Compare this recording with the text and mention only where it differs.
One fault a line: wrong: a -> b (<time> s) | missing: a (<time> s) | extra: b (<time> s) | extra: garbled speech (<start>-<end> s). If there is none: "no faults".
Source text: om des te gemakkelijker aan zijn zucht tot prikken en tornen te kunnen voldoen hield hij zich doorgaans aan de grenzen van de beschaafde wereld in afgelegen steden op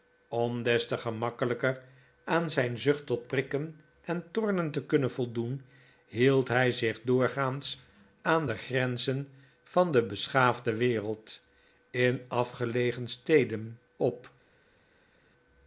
no faults